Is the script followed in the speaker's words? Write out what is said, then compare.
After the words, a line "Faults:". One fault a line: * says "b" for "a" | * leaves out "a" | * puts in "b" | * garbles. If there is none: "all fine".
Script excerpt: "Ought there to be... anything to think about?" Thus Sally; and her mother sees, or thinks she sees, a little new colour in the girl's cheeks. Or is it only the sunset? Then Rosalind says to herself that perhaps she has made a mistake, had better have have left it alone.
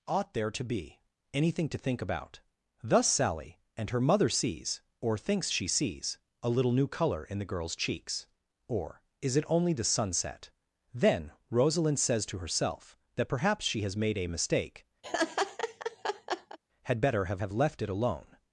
"Ought there to be... anything to think about?" Thus Sally; and her mother sees, or thinks she sees, a little new colour in the girl's cheeks. Or is it only the sunset? Then Rosalind says to herself that perhaps she has made a mistake, had better have have left it alone.
Faults:
all fine